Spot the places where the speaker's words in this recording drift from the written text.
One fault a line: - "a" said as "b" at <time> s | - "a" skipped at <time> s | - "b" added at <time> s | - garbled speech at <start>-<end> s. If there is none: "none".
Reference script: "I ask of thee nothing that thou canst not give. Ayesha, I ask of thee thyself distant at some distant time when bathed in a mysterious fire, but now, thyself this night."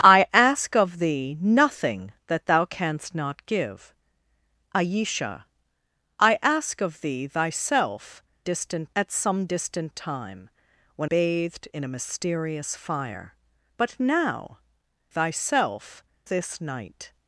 none